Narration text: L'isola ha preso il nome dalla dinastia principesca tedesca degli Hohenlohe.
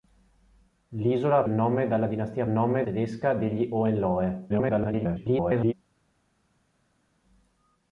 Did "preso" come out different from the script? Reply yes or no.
yes